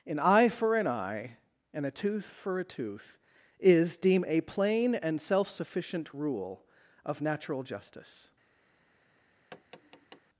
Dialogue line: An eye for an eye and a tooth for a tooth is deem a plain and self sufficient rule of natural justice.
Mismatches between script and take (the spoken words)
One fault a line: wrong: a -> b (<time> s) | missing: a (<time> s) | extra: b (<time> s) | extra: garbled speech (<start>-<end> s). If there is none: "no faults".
no faults